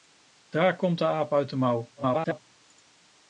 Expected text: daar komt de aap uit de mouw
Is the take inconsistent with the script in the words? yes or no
yes